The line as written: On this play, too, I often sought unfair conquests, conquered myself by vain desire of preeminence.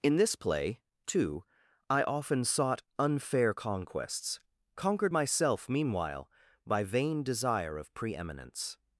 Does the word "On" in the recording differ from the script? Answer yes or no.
yes